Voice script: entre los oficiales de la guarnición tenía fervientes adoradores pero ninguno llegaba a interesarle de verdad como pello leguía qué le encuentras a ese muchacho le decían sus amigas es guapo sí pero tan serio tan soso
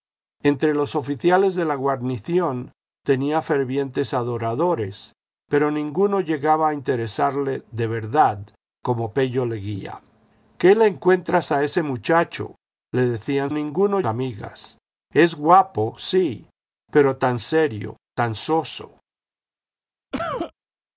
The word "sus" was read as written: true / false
false